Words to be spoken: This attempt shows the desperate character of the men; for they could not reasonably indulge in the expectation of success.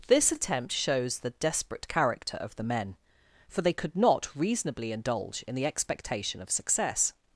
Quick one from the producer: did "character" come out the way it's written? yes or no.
yes